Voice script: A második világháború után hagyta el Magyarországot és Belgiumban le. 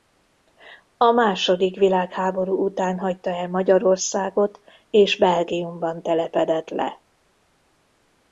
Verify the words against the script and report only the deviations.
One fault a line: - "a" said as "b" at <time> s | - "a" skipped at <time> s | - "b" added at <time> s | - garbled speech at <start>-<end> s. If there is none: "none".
- "telepedett" added at 6.0 s